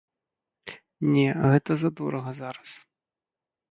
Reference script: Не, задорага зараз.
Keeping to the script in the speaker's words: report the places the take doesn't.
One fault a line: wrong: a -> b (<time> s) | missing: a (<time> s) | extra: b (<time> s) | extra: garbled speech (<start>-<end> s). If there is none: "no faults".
extra: гэта (1.5 s)